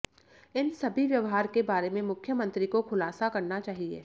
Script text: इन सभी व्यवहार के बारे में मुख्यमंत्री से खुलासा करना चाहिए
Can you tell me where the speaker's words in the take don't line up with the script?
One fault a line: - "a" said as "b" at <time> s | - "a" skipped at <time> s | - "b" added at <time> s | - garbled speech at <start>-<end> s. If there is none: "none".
- "से" said as "को" at 2.7 s